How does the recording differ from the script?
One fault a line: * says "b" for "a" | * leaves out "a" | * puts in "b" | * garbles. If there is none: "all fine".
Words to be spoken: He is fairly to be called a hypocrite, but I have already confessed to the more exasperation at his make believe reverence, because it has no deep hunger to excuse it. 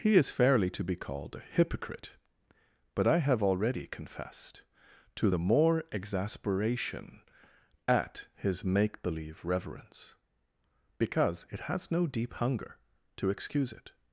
all fine